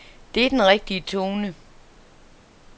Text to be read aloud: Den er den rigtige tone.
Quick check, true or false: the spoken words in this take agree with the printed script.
false